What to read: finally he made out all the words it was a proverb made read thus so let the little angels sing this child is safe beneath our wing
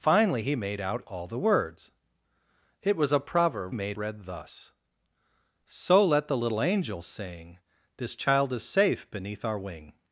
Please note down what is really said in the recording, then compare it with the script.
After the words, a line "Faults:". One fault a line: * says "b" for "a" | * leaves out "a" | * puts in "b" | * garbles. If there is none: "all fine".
finally he made out all the words it was a proverb made read thus so let the little angels sing this child is safe beneath our wing
Faults:
all fine